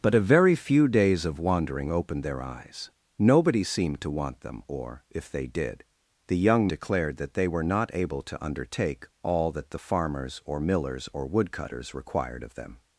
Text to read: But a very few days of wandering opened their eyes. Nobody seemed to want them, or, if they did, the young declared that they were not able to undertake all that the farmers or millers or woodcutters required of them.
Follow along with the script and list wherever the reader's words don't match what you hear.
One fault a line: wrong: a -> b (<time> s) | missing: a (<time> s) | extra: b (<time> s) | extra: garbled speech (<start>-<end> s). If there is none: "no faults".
no faults